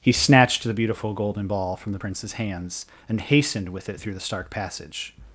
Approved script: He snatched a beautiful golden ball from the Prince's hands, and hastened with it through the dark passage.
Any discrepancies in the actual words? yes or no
yes